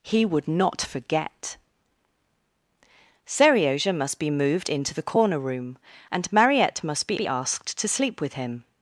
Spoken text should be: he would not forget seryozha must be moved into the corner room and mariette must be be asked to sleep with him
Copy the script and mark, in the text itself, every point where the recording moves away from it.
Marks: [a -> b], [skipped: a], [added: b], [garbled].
he would not forget seryozha must be moved into the corner room and mariette must be be asked to sleep with him